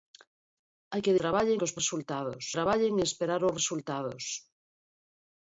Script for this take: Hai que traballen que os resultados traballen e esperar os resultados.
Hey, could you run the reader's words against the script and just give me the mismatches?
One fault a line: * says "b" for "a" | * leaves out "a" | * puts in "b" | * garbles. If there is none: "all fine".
all fine